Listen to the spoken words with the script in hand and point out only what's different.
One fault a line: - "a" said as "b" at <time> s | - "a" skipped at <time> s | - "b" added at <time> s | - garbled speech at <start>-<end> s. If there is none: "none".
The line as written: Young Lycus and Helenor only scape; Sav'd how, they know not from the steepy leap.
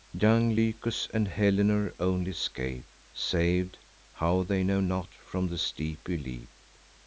none